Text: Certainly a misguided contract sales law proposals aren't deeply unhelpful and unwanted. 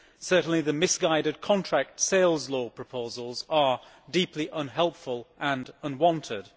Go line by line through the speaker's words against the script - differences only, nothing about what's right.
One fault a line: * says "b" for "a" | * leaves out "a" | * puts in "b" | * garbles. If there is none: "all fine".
* says "the" for "a"
* says "are" for "aren't"